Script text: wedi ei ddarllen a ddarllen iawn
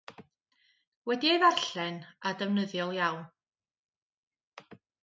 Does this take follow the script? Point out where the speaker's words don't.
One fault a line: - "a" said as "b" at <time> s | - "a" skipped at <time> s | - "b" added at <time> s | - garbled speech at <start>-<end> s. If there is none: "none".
- "ddarllen" said as "defnyddiol" at 2.4 s